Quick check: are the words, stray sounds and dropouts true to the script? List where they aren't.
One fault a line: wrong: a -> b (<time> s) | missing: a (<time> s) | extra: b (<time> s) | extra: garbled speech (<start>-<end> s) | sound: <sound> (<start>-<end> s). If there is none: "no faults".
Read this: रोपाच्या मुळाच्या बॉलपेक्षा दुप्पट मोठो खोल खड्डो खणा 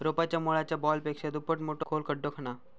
no faults